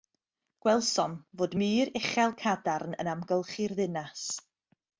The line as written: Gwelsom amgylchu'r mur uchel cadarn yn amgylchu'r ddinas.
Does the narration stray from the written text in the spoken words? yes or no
yes